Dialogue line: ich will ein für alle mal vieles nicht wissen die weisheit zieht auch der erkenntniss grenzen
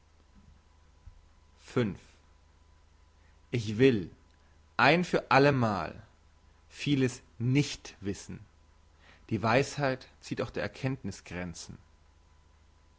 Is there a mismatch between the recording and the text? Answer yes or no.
no